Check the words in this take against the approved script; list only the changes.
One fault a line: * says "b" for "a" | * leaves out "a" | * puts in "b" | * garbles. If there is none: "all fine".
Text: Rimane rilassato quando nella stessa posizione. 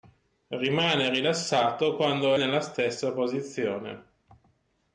all fine